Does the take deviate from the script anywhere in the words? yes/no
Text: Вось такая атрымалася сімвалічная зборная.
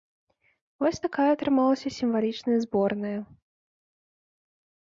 no